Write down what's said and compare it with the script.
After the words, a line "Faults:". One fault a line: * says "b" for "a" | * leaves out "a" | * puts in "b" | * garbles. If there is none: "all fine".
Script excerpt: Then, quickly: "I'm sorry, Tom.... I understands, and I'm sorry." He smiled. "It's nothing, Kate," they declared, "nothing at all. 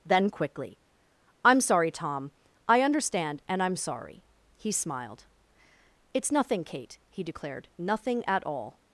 Then, quickly: "I'm sorry, Tom.... I understand, and I'm sorry." He smiled. "It's nothing, Kate," he declared, "nothing at all.
Faults:
* says "understand" for "understands"
* says "he" for "they"